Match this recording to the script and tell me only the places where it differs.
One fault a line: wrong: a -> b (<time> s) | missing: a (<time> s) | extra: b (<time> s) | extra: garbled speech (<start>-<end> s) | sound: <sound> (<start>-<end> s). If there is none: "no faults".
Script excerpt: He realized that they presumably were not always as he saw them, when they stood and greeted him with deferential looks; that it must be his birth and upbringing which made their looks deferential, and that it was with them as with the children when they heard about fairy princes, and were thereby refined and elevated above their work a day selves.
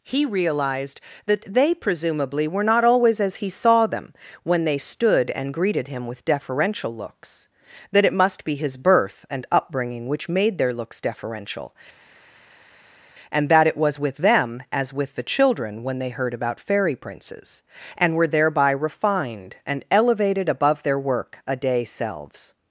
no faults